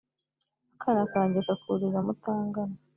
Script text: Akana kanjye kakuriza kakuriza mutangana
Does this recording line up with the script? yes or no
no